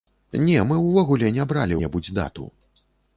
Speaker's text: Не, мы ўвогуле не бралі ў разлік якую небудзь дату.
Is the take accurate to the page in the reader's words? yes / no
no